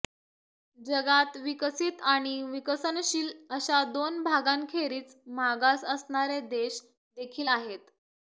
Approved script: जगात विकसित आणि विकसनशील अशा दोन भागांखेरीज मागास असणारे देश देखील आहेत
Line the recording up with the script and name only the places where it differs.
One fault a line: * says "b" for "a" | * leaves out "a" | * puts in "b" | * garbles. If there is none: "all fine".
all fine